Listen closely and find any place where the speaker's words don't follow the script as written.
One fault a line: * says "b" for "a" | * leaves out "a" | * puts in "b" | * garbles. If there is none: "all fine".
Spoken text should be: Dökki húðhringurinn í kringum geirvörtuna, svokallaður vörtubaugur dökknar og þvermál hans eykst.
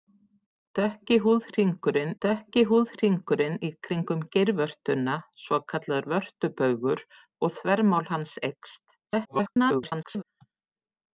* puts in "dökki húðhringurinn"
* leaves out "dökknar"
* garbles